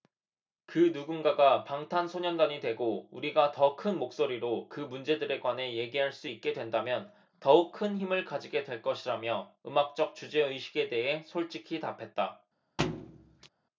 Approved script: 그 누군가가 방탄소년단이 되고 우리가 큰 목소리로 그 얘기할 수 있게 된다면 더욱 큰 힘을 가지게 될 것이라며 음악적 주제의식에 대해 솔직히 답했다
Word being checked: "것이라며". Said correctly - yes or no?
yes